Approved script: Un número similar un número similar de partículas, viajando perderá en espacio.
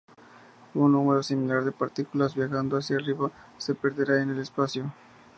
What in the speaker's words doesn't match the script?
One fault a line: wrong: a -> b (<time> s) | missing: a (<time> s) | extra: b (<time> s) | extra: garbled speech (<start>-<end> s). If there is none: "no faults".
wrong: un número similar de partículas viajando -> de partículas viajando hacia arriba se (1.6 s)
extra: el (4.3 s)